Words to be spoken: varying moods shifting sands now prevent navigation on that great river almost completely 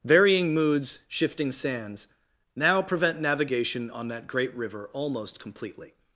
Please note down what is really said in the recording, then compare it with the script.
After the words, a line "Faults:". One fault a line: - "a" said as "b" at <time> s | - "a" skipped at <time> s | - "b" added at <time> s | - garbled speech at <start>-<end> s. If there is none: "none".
varying moods shifting sands now prevent navigation on that great river almost completely
Faults:
none